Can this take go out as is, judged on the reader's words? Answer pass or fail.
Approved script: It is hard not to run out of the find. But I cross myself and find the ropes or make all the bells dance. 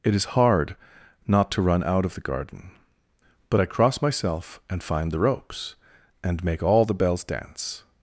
fail